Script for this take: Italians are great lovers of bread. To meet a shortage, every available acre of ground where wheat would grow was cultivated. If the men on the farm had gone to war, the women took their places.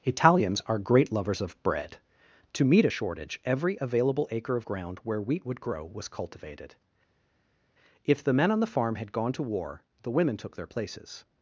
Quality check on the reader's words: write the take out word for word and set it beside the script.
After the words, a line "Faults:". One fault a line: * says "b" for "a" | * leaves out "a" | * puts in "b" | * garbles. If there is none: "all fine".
Italians are great lovers of bread. To meet a shortage, every available acre of ground where wheat would grow was cultivated. If the men on the farm had gone to war, the women took their places.
Faults:
all fine